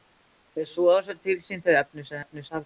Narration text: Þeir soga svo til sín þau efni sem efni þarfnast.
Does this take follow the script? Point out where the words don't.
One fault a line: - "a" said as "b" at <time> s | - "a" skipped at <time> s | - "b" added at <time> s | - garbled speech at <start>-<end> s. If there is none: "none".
none